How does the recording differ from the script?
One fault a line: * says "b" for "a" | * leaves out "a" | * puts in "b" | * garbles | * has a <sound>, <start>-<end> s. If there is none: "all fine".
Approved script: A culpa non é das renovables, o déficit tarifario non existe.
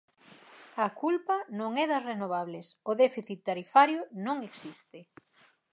all fine